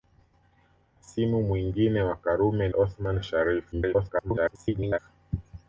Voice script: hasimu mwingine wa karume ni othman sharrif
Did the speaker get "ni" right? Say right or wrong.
wrong